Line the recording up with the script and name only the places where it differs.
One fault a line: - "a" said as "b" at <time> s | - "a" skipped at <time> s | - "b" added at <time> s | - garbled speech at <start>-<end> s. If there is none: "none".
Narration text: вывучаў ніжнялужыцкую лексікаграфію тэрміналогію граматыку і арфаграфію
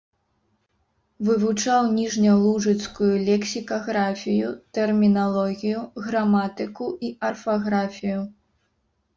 none